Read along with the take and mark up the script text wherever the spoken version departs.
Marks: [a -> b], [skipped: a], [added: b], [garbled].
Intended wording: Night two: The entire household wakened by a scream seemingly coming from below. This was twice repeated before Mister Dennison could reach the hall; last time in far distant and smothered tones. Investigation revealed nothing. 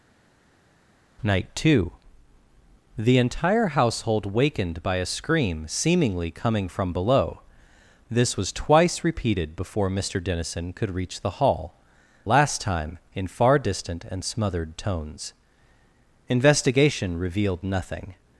Night two: The entire household wakened by a scream seemingly coming from below. This was twice repeated before Mister Dennison could reach the hall; last time in far distant and smothered tones. Investigation revealed nothing.